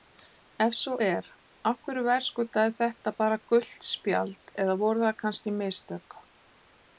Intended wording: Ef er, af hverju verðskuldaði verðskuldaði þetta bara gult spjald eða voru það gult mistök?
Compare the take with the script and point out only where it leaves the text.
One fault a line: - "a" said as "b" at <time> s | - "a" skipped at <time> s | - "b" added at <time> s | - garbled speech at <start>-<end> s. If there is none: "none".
- "svo" added at 0.8 s
- "verðskuldaði" skipped at 2.8 s
- "gult" said as "kannski" at 5.3 s